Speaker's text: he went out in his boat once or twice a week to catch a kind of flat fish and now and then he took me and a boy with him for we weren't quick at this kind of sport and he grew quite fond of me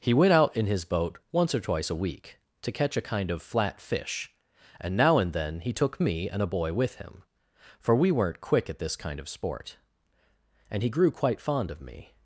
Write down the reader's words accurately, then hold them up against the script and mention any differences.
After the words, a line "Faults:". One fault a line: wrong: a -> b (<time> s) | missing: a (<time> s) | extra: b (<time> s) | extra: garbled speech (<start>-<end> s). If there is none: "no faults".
he went out in his boat once or twice a week to catch a kind of flat fish and now and then he took me and a boy with him for we weren't quick at this kind of sport and he grew quite fond of me
Faults:
no faults